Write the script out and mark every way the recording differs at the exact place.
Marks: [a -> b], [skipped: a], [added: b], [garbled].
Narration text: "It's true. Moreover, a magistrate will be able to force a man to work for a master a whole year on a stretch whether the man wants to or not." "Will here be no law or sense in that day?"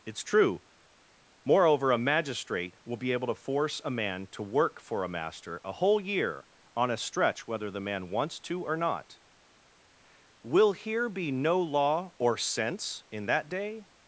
"It's true. Moreover, a magistrate will be able to force a man to work for a master a whole year on a stretch whether the man wants to or not." "Will here be no law or sense in that day?"